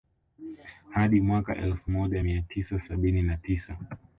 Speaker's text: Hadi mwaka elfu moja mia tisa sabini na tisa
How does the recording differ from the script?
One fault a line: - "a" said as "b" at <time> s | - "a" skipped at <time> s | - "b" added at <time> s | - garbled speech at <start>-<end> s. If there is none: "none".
none